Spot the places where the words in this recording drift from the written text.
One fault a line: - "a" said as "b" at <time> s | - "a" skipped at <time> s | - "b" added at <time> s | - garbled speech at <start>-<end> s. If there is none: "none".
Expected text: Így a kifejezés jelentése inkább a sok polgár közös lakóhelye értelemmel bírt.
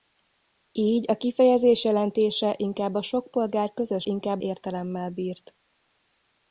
- "lakóhelye" said as "inkább" at 4.0 s